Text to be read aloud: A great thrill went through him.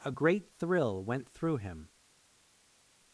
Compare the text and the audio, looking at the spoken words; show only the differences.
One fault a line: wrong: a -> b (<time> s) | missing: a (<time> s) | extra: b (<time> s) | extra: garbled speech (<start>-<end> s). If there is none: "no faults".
no faults